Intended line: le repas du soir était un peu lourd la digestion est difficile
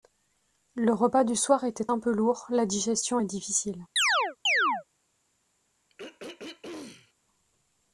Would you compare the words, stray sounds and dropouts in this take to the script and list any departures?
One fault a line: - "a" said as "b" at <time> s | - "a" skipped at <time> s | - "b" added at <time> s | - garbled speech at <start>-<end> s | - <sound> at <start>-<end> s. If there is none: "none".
- chirp at 4.0-4.8 s
- throat clearing at 5.9-7.1 s